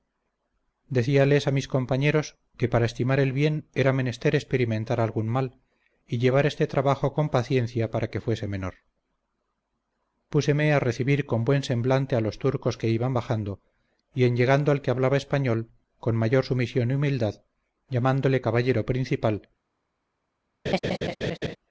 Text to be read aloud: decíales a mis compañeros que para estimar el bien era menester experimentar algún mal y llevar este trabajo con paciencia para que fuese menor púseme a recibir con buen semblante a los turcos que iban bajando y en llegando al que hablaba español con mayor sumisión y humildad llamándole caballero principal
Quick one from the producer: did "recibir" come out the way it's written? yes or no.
yes